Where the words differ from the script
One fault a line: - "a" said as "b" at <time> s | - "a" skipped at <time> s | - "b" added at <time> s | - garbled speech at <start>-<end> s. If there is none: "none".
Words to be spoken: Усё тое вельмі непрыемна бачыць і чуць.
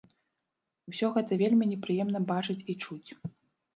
- "тое" said as "гэта" at 1.2 s